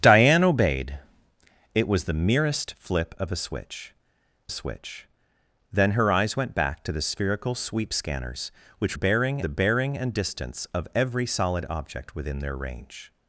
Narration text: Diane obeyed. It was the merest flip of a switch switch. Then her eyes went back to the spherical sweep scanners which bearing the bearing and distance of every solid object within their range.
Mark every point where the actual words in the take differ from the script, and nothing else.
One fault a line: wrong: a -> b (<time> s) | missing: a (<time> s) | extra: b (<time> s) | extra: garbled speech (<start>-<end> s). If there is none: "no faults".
no faults